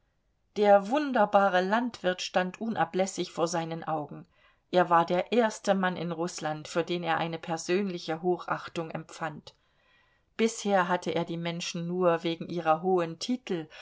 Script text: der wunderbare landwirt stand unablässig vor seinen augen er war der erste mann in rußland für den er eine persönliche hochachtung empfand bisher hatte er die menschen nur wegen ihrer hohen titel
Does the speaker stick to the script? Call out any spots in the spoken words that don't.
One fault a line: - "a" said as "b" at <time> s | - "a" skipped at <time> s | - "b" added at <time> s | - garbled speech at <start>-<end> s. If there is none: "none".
none